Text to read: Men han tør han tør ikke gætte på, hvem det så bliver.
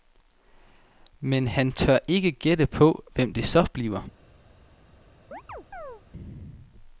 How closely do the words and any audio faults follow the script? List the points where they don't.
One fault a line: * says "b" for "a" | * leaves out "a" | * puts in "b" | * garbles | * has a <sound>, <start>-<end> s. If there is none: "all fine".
* leaves out "han tør"
* has a chirp, 5.3-6.0 s